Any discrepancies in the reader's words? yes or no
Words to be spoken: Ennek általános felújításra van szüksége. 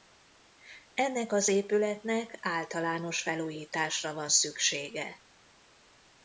yes